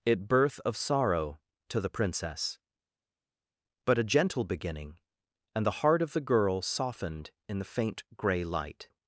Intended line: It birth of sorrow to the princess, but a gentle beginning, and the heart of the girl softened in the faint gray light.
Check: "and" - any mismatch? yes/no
no